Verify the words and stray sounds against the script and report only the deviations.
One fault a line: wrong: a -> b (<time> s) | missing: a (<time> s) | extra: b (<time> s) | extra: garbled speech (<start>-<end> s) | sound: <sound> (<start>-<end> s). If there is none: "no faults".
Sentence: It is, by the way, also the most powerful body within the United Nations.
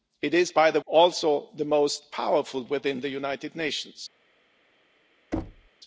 missing: way (0.8 s)
missing: body (2.6 s)
sound: thud (5.3-5.7 s)